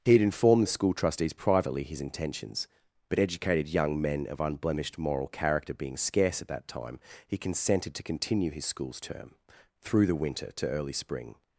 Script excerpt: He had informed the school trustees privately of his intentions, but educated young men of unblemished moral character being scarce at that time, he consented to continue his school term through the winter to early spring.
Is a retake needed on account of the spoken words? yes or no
yes